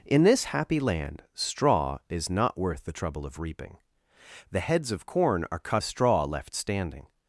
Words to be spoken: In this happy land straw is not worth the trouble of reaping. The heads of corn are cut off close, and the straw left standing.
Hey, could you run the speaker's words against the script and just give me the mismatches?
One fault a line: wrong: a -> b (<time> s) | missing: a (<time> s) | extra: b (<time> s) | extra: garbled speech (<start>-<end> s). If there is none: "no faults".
missing: off close and (5.8 s)